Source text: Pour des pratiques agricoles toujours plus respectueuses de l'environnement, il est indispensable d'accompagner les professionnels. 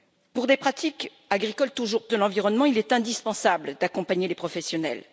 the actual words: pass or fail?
fail